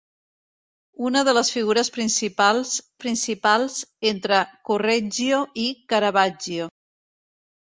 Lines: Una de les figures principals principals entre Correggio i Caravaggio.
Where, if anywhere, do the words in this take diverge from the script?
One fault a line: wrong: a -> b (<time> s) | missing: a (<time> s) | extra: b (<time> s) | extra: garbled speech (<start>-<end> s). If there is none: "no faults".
no faults